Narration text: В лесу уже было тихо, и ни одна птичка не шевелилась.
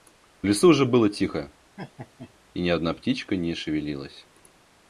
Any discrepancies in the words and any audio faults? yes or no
yes